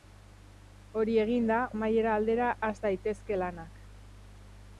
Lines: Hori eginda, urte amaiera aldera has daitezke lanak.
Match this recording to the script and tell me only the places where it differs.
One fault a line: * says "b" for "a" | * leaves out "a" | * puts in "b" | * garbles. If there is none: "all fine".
* leaves out "urte"